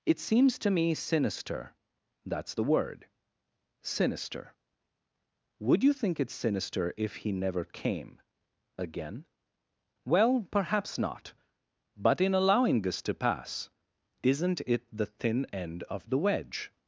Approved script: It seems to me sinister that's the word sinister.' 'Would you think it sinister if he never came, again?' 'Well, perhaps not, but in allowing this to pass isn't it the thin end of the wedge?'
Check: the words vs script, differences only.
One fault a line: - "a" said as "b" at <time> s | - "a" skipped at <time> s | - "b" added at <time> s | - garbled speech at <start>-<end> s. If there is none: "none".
none